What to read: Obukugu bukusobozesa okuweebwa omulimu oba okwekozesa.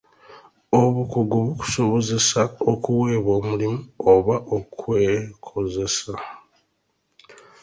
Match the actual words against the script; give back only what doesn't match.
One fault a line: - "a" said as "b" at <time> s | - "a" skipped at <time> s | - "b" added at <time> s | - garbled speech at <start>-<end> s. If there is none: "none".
none